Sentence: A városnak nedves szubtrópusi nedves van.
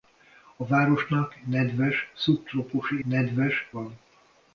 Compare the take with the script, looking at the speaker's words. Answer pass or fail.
pass